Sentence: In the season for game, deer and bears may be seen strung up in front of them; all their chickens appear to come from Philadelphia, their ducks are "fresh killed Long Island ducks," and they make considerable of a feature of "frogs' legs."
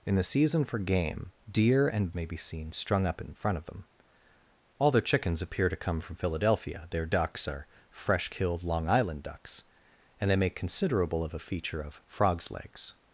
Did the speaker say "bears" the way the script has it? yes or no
no